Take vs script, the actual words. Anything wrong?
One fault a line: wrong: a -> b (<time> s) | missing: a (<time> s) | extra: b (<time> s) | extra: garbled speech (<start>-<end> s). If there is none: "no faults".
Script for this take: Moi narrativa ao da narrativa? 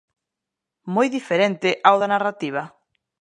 wrong: narrativa -> diferente (1.2 s)